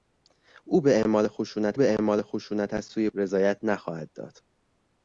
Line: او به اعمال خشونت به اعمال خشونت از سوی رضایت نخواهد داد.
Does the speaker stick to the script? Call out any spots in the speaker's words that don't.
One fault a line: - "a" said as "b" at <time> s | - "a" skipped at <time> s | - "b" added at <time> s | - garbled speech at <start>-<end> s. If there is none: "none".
none